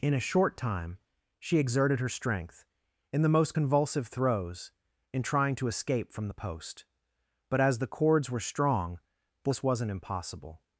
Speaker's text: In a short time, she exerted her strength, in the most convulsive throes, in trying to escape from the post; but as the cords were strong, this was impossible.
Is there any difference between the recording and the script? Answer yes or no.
yes